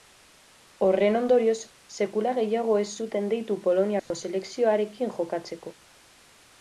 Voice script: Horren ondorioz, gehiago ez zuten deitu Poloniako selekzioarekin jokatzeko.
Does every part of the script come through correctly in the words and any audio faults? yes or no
no